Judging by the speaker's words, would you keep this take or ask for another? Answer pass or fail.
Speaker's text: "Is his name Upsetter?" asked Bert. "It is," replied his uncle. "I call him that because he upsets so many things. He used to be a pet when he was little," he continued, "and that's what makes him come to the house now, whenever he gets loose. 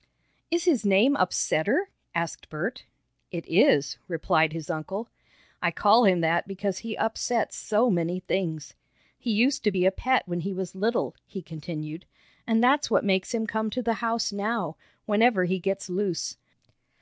pass